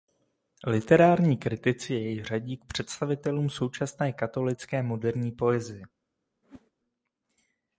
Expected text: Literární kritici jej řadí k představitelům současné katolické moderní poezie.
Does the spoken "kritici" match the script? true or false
true